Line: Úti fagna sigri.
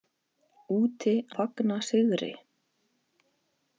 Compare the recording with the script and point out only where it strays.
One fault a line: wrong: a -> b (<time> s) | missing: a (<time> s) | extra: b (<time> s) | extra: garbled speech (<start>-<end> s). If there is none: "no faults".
no faults